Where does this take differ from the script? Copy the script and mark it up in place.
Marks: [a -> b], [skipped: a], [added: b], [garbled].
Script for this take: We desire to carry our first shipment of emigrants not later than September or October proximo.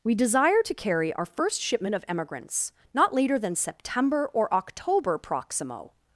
We desire to carry our first shipment of emigrants not later than September or October proximo.